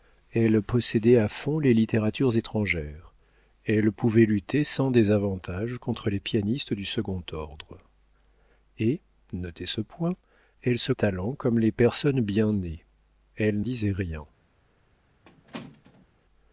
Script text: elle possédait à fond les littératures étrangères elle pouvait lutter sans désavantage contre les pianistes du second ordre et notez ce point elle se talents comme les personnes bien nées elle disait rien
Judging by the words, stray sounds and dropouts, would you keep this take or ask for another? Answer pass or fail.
fail